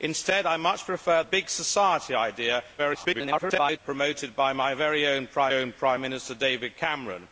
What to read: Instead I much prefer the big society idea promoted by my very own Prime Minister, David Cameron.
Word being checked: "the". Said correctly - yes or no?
no